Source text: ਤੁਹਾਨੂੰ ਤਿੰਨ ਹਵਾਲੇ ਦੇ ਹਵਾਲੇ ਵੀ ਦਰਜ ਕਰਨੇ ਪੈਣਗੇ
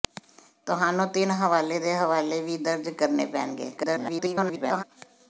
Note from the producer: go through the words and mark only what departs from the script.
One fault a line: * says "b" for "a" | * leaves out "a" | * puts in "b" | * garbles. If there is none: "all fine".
* garbles